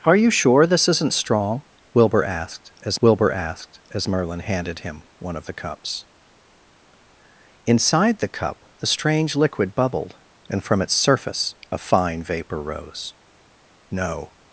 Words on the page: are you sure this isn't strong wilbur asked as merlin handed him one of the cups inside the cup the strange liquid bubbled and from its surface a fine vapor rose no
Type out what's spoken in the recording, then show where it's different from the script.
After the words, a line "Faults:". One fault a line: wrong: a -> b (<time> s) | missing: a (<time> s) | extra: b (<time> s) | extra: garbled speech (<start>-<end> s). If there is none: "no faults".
are you sure this isn't strong wilbur asked as wilbur asked as merlin handed him one of the cups inside the cup the strange liquid bubbled and from its surface a fine vapor rose no
Faults:
extra: wilbur asked as (3.0 s)